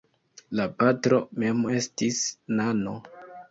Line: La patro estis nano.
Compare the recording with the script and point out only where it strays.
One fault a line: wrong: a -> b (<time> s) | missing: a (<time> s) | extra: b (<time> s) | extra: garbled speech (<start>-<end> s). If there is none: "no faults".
extra: mem (1.4 s)